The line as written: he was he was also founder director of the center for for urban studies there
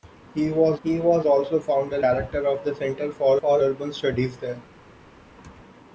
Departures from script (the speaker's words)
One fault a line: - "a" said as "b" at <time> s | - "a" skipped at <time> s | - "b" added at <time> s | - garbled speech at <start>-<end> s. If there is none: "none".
none